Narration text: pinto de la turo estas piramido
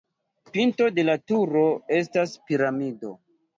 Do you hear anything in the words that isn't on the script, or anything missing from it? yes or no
no